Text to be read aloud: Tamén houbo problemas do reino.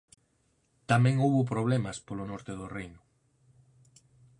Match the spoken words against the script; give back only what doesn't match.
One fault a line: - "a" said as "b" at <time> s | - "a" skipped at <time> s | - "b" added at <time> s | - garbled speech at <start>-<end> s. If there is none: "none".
- "polo norte" added at 2.1 s